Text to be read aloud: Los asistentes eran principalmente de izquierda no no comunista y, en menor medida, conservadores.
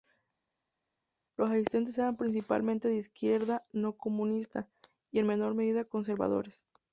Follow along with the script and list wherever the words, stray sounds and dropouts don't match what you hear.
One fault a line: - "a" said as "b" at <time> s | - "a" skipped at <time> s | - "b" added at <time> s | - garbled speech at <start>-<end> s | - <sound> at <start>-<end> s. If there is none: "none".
- "no" skipped at 4.0 s